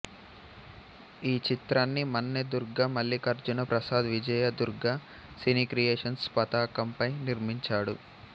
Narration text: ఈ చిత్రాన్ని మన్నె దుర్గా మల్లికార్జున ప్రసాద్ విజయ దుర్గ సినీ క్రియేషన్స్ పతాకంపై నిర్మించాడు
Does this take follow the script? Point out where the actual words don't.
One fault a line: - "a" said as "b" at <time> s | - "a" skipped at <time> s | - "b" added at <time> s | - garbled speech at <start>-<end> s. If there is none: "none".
none